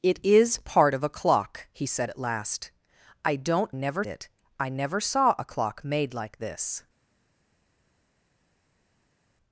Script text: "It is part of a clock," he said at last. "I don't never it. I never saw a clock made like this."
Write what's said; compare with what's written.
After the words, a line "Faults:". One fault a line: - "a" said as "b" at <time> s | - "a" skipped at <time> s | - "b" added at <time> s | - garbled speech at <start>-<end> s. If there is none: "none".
"It is part of a clock," he said at last. "I don't never it. I never saw a clock made like this."
Faults:
none